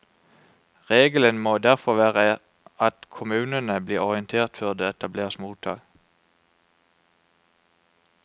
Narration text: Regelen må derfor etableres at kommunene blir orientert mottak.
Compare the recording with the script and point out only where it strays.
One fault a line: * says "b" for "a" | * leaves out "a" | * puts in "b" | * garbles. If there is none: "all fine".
* says "være" for "etableres"
* puts in "før det etableres"